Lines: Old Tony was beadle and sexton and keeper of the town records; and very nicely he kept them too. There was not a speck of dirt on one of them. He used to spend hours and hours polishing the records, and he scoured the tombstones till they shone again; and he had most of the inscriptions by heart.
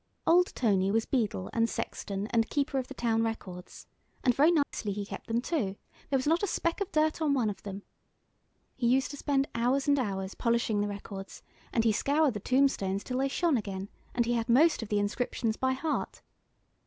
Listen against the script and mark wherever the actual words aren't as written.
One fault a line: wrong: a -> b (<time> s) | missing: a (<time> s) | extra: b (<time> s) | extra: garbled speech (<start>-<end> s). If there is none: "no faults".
no faults